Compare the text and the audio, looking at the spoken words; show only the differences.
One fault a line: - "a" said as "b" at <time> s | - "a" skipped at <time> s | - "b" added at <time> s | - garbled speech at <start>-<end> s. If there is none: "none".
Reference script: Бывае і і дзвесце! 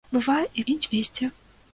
none